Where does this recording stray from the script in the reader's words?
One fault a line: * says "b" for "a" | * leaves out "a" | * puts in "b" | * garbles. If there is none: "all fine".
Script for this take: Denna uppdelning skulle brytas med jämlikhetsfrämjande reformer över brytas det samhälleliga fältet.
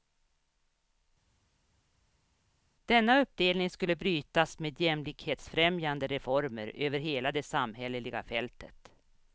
* says "hela" for "brytas"